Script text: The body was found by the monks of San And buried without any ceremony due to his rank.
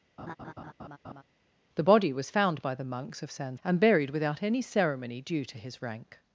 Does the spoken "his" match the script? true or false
true